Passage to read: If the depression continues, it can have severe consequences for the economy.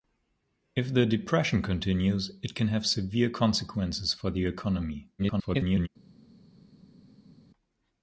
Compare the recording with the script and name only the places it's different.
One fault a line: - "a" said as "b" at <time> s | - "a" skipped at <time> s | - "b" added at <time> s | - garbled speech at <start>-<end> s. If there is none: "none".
- garbled speech at 5.2-5.9 s